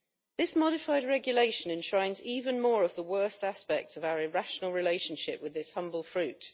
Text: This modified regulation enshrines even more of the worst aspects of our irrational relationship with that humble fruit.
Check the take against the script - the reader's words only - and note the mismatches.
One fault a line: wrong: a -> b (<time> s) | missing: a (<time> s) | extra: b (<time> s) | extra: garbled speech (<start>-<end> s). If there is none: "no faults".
wrong: that -> this (5.5 s)